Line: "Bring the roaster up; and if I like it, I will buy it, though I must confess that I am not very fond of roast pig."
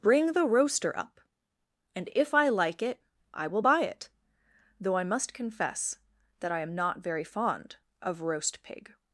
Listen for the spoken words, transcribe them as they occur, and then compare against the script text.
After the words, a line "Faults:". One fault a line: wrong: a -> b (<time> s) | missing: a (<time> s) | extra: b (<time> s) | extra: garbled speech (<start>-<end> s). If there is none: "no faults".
"Bring the roaster up; and if I like it, I will buy it, though I must confess that I am not very fond of roast pig."
Faults:
no faults